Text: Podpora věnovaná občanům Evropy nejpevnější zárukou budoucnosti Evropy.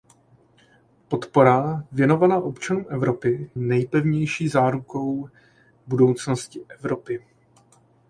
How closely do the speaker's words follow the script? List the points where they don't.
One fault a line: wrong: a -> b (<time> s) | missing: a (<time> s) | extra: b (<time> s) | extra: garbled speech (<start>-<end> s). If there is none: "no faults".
no faults